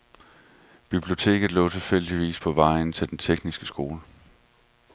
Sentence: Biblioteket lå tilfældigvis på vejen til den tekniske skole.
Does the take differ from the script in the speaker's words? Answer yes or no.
no